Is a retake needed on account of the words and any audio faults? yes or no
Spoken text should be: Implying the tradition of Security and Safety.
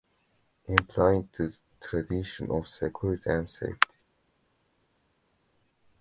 no